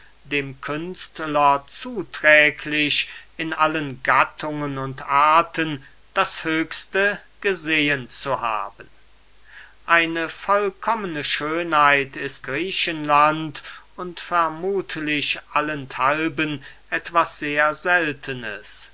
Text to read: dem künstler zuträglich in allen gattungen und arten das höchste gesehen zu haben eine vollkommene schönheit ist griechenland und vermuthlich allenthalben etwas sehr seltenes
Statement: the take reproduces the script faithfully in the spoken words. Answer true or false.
true